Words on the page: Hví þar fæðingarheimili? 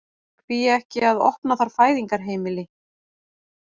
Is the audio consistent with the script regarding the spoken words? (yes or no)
no